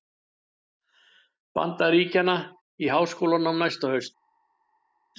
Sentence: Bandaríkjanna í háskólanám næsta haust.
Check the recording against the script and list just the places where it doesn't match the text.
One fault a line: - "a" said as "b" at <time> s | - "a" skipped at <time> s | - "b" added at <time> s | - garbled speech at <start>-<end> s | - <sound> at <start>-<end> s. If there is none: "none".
none